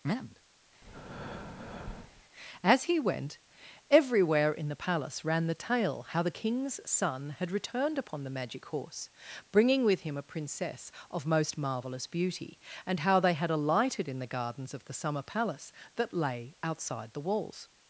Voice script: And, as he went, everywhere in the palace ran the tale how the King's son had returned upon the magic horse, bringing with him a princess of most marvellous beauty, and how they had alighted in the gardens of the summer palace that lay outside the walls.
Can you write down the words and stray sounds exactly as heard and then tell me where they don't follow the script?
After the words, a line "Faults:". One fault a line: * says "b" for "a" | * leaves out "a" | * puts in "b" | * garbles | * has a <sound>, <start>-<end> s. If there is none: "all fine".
And, as he went, everywhere in the palace ran the tale how the King's son had returned upon the magic horse, bringing with him a princess of most marvellous beauty, and how they had alighted in the gardens of the summer palace that lay outside the walls.
Faults:
* has a breath, 0.8-2.2 s